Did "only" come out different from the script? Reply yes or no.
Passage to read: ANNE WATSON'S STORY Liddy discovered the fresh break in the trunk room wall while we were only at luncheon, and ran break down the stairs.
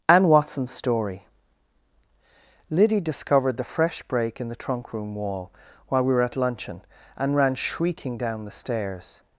yes